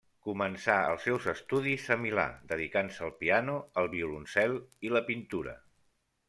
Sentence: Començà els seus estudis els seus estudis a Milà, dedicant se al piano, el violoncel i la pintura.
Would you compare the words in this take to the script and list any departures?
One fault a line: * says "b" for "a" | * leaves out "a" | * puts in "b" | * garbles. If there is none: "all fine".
* leaves out "els seus estudis"